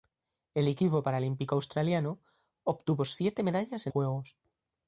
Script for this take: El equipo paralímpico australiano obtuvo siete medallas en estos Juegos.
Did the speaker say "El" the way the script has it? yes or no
yes